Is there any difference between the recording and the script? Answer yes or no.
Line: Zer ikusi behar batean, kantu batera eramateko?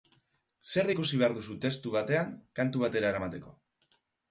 yes